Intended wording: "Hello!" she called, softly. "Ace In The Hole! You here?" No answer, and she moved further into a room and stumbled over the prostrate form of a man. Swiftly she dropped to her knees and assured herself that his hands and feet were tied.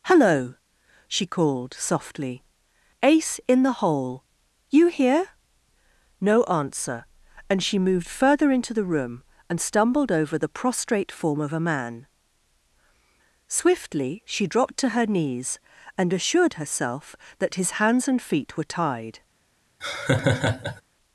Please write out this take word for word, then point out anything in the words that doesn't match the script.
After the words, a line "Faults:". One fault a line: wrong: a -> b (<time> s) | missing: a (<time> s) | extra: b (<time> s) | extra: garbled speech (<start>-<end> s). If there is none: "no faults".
"Hello!" she called, softly. "Ace In The Hole! You here?" No answer, and she moved further into the room and stumbled over the prostrate form of a man. Swiftly she dropped to her knees and assured herself that his hands and feet were tied.
Faults:
wrong: a -> the (8.7 s)